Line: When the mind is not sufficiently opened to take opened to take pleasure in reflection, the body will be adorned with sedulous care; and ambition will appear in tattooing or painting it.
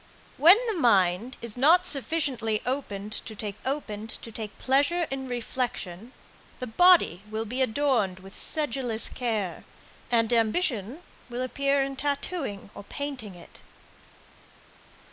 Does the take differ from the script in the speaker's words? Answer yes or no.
no